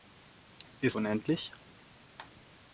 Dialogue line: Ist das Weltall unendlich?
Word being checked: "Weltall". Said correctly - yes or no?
no